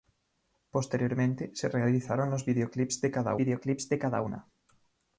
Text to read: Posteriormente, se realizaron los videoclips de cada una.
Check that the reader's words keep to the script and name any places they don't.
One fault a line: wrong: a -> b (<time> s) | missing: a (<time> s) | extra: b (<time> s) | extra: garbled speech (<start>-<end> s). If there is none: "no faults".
extra: videoclips de cada (3.3 s)